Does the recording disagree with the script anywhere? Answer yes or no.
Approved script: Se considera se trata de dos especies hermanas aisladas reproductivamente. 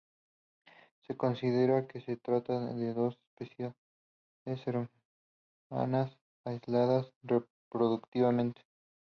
yes